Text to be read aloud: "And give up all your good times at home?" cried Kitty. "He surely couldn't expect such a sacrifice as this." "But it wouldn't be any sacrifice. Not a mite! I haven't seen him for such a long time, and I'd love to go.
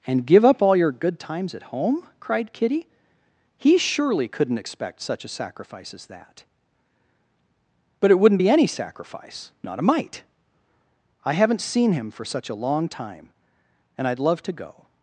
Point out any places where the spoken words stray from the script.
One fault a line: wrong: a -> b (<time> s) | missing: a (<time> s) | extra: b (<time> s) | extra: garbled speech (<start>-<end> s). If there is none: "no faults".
wrong: this -> that (6.1 s)